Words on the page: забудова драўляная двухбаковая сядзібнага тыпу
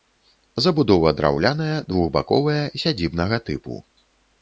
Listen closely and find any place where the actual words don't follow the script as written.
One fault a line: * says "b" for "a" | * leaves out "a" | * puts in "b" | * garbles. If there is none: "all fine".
all fine